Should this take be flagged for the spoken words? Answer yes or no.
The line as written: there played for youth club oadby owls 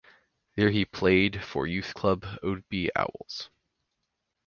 yes